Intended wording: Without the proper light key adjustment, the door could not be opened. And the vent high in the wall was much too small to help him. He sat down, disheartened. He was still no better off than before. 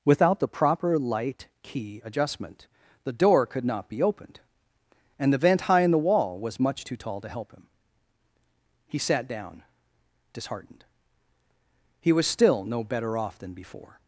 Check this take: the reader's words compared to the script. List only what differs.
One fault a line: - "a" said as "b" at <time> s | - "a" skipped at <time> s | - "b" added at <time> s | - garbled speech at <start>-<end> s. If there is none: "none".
- "small" said as "tall" at 6.9 s